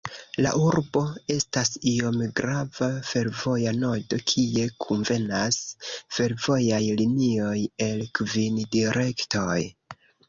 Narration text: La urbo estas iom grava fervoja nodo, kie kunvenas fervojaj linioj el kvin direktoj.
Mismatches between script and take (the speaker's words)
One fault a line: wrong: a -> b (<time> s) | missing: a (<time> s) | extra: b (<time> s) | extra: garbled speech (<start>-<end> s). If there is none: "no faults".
no faults